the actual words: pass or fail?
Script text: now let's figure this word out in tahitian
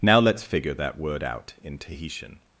fail